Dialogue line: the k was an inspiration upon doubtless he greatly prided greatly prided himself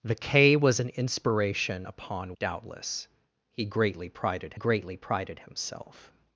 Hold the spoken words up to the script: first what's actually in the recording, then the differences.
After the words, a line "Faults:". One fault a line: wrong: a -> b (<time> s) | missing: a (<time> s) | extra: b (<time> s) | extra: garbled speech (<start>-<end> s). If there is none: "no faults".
the k was an inspiration upon doubtless he greatly prided greatly prided himself
Faults:
no faults